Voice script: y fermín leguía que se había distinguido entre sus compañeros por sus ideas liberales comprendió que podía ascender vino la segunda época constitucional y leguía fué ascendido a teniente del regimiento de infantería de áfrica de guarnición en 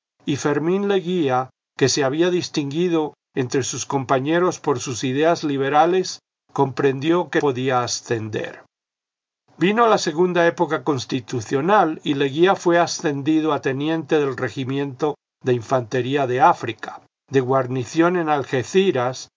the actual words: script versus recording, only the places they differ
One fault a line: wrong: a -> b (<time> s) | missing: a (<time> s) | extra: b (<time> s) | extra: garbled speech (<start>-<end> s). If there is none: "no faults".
no faults